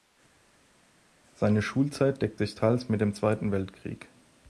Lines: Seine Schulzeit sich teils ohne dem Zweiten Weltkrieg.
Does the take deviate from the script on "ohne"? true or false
true